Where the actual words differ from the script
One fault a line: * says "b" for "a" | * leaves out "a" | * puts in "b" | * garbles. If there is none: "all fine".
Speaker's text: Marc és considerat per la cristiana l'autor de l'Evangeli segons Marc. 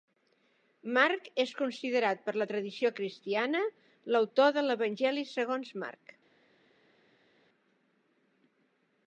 * puts in "tradició"